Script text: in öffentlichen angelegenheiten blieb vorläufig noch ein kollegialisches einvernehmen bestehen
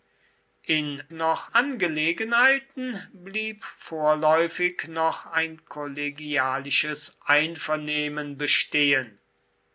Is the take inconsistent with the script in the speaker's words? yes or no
yes